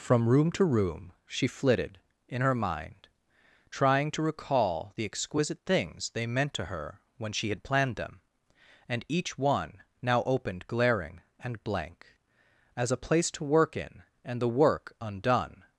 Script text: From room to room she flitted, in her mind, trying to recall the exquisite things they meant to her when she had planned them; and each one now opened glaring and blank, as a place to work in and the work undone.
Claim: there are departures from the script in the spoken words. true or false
false